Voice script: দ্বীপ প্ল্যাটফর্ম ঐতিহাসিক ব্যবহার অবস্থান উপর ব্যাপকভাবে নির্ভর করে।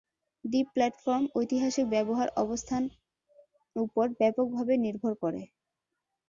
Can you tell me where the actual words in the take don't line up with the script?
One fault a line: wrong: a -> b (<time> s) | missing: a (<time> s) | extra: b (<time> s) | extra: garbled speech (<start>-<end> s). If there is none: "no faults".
no faults